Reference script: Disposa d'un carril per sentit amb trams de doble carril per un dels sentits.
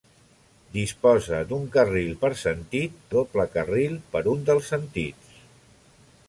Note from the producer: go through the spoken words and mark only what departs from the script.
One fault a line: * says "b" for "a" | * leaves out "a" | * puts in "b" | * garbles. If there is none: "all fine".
* leaves out "amb trams de"